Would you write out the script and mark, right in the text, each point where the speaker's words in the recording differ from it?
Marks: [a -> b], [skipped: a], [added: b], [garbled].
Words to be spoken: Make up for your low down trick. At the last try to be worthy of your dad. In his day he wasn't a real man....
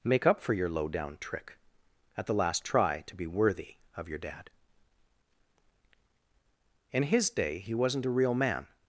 Make up for your low down trick. At the last try to be worthy of your dad. In his day he wasn't a real man....